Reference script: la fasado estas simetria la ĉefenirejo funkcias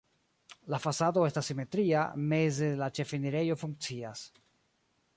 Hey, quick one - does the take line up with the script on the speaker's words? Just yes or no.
no